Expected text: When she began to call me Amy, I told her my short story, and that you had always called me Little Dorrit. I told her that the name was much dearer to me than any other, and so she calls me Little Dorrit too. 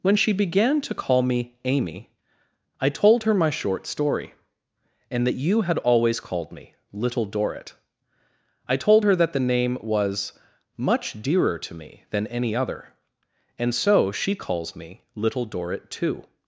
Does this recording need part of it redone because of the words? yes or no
no